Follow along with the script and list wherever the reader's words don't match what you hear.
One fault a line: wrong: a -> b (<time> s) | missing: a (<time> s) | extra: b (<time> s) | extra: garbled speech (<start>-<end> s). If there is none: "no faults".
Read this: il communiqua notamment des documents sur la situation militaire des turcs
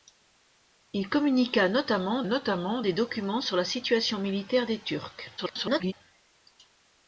extra: notamment (2.3 s)
extra: garbled speech (5.4-5.9 s)